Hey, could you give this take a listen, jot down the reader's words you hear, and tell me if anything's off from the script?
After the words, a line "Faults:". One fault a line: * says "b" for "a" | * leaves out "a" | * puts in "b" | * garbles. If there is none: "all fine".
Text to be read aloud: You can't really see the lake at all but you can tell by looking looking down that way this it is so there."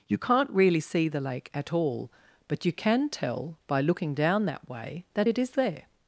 You can't really see the lake at all but you can tell by looking down that way that it is there."
Faults:
* leaves out "looking"
* says "that" for "this"
* leaves out "so"